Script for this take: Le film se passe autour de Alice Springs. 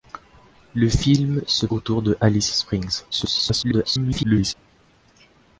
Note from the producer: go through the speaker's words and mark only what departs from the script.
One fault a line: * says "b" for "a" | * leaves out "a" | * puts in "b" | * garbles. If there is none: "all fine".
* leaves out "passe"
* garbles